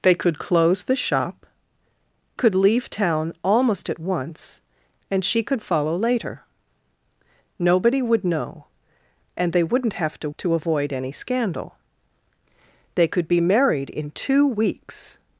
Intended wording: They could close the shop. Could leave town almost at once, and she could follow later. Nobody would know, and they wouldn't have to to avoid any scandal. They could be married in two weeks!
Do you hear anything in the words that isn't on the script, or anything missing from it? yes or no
no